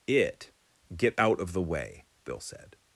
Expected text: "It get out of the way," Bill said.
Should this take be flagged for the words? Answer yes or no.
no